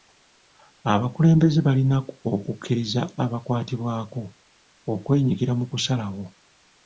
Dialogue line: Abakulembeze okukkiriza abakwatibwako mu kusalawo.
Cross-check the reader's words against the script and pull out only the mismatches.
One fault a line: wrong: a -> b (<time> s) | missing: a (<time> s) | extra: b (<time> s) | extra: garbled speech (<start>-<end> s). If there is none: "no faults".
extra: balina (1.7 s)
extra: okwenyigira (4.9 s)